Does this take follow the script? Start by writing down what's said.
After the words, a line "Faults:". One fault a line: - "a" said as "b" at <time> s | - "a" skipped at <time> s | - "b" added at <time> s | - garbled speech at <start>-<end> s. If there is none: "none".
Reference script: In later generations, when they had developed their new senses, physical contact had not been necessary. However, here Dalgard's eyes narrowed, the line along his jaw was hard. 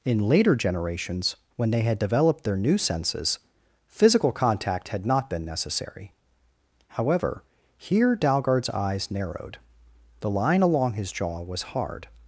In later generations, when they had developed their new senses, physical contact had not been necessary. However, here Dalgard's eyes narrowed, the line along his jaw was hard.
Faults:
none